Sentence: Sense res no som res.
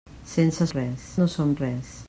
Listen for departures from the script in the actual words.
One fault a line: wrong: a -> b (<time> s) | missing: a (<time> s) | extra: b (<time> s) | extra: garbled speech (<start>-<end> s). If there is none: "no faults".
no faults